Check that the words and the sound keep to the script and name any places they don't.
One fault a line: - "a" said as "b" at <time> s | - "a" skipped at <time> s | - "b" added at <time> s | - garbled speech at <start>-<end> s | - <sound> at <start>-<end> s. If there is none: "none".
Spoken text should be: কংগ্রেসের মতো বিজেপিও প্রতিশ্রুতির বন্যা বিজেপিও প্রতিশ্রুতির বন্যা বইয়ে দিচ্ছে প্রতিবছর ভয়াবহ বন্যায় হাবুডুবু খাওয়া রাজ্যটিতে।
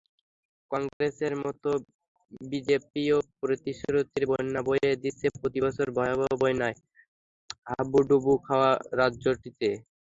- dropout at 0.9-1.0 s
- "বিজেপিও প্রতিশ্রুতির বন্যা" skipped at 4.6 s